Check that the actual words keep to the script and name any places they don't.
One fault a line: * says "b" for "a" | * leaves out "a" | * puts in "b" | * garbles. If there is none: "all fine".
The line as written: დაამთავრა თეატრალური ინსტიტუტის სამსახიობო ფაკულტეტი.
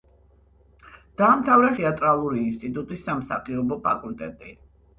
all fine